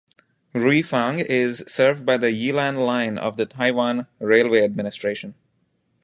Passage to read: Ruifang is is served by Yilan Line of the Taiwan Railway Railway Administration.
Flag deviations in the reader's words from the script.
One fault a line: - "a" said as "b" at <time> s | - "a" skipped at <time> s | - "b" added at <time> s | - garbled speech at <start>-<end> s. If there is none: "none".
- "is" skipped at 1.6 s
- "the" added at 2.2 s
- "Railway" skipped at 4.6 s